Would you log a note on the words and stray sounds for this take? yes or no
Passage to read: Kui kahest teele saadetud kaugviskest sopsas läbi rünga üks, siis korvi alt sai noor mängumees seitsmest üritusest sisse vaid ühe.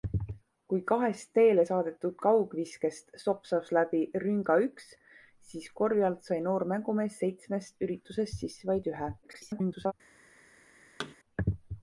yes